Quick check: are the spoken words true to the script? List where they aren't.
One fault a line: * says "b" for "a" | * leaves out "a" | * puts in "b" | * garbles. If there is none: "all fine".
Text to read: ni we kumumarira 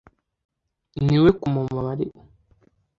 all fine